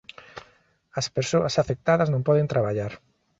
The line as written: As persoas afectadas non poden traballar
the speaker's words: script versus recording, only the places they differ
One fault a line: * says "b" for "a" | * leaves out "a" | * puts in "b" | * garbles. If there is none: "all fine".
all fine